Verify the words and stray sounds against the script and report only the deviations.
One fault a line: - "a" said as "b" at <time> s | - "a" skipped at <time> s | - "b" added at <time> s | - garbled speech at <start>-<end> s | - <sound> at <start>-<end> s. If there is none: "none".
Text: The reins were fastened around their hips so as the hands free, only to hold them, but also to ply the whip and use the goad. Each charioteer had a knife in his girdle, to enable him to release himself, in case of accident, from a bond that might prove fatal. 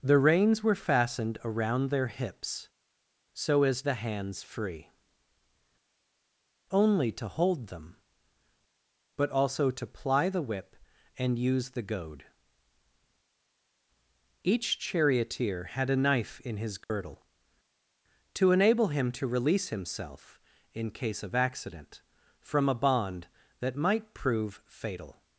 - dropout at 16.8-16.9 s